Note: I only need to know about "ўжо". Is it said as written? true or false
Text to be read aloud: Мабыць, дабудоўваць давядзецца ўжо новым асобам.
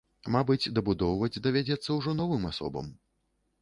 true